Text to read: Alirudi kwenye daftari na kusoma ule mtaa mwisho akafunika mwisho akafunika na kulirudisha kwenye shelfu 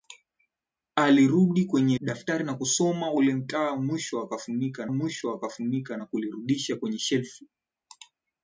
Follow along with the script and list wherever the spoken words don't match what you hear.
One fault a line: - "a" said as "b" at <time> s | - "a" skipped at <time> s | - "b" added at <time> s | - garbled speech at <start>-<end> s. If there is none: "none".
none